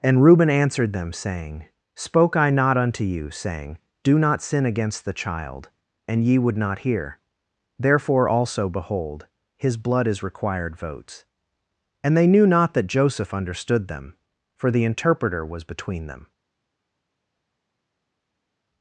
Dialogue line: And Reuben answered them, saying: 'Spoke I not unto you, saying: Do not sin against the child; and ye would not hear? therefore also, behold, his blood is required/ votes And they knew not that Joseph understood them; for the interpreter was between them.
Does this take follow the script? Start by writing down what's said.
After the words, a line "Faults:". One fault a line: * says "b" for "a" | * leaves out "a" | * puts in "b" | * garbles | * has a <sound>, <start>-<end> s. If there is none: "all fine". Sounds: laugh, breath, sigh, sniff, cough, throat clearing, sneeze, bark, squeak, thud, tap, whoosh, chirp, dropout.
And Reuben answered them, saying: 'Spoke I not unto you, saying: Do not sin against the child; and ye would not hear? therefore also, behold, his blood is required/ votes And they knew not that Joseph understood them; for the interpreter was between them.
Faults:
all fine